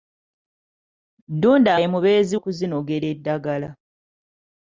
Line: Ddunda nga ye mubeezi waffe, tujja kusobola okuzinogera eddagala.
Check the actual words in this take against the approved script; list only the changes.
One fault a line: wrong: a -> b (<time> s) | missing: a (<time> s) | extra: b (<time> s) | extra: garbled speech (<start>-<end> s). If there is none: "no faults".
missing: nga (1.7 s)
missing: waffe tujja kusobola (2.3 s)